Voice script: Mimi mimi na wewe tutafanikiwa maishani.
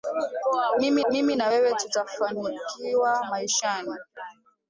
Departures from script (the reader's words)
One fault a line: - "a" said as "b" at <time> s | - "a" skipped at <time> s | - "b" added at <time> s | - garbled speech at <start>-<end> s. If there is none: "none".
none